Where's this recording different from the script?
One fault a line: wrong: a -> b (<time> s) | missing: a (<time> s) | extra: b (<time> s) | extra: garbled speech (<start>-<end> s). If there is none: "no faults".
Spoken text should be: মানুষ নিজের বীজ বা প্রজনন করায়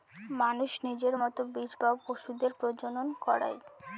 extra: মতো (1.2 s)
extra: পশুদের (2.0 s)